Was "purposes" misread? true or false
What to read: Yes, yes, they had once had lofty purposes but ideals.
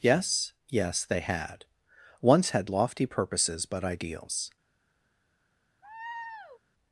false